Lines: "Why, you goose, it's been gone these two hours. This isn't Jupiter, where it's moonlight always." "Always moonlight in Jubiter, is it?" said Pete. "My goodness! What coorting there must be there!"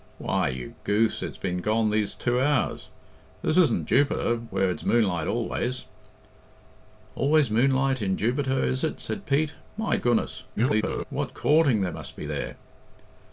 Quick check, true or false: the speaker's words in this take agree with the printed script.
false